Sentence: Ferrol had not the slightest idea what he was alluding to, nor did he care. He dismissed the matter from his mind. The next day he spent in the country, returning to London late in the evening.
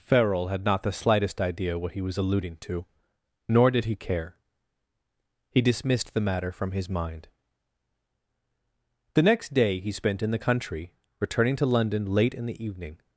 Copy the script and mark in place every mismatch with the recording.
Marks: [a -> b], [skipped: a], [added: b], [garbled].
Ferrol had not the slightest idea what he was alluding to, nor did he care. He dismissed the matter from his mind. The next day he spent in the country, returning to London late in the evening.